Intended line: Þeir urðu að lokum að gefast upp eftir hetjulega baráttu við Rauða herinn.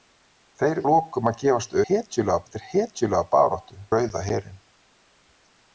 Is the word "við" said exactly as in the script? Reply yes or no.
no